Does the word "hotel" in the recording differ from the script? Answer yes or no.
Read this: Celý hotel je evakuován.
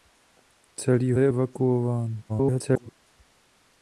yes